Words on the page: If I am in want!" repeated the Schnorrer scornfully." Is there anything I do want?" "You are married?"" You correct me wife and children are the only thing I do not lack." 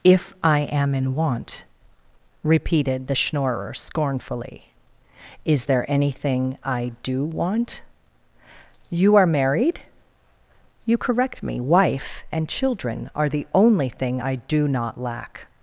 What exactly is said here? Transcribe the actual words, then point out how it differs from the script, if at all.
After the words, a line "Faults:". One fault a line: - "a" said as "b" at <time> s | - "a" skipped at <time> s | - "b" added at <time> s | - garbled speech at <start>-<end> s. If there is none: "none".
If I am in want!" repeated the Schnorrer scornfully." Is there anything I do want?" "You are married?"" You correct me wife and children are the only thing I do not lack."
Faults:
none